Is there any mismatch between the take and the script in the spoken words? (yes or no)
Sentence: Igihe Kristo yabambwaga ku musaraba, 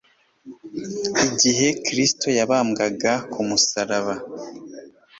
no